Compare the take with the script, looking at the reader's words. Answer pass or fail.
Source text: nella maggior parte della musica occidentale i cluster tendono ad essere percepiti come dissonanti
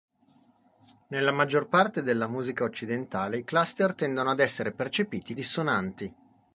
fail